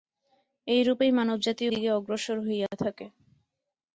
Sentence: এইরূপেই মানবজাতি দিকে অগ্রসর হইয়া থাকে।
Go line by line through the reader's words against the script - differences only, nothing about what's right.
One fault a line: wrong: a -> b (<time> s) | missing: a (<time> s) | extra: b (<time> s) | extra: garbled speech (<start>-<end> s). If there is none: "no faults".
no faults